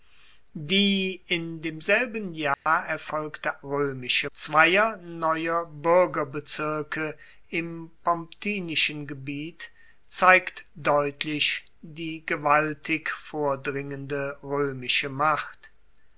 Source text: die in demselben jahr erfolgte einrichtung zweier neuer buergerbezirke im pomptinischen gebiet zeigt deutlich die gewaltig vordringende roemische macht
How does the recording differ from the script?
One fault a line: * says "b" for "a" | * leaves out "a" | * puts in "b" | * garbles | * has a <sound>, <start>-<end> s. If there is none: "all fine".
* has a dropout, 2.5-2.7 s
* says "roemische" for "einrichtung"